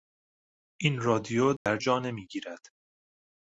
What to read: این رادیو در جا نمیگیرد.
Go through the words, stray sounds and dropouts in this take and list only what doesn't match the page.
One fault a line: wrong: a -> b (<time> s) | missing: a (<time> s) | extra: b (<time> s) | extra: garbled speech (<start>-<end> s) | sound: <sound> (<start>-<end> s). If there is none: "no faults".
sound: dropout (1.6-1.7 s)